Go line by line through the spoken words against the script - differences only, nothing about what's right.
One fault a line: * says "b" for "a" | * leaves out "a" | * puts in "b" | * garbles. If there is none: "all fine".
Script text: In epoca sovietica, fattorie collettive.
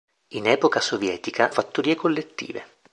all fine